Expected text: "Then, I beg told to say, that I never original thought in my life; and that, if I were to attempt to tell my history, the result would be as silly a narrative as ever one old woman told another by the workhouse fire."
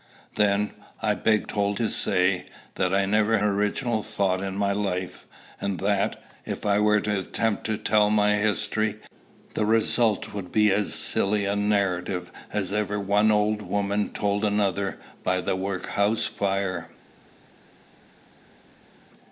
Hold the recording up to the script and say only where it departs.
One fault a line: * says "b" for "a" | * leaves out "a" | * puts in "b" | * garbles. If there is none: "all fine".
all fine